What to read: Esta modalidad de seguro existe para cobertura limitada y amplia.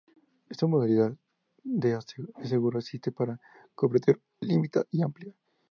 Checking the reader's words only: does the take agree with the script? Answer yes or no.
yes